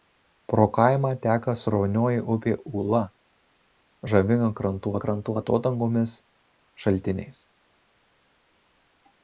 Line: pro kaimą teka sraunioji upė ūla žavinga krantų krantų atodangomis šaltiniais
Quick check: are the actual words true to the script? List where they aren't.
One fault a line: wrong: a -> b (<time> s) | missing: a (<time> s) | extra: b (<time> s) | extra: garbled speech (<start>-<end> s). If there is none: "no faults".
no faults